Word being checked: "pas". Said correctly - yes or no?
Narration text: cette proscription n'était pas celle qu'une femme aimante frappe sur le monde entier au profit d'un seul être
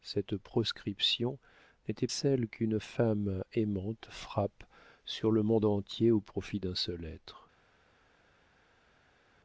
no